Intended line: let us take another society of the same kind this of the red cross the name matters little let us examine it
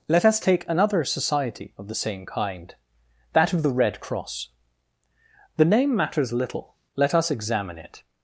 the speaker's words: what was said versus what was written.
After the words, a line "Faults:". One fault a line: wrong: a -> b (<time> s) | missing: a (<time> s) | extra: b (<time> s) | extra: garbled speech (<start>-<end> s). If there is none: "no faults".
let us take another society of the same kind that of the red cross the name matters little let us examine it
Faults:
wrong: this -> that (3.3 s)